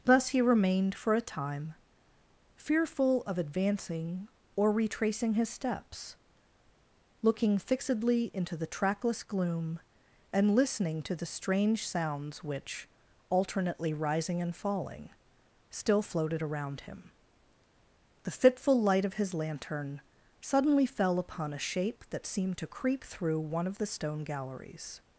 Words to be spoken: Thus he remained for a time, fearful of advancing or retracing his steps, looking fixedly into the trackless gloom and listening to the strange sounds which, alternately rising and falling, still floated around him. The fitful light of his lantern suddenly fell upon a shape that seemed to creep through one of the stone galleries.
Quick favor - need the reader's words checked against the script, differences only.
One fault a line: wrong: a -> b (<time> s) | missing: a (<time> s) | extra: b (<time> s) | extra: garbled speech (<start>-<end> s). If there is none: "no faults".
no faults